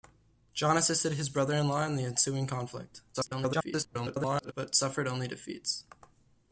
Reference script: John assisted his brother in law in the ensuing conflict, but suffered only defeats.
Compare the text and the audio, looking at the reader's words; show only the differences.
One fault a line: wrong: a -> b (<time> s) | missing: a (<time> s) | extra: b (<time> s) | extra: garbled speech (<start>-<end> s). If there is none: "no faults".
extra: garbled speech (3.1-4.5 s)